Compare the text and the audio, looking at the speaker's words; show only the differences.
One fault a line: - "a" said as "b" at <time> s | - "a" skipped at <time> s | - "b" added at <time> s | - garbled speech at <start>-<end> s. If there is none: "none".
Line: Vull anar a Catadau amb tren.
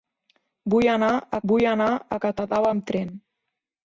- "vull anar a" added at 1.5 s